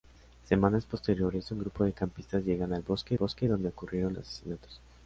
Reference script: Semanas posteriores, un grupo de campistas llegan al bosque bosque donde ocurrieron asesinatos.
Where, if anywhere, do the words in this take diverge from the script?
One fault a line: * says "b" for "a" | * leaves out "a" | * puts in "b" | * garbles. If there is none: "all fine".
all fine